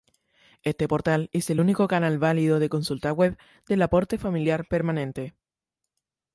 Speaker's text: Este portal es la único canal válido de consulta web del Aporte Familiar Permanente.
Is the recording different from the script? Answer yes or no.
yes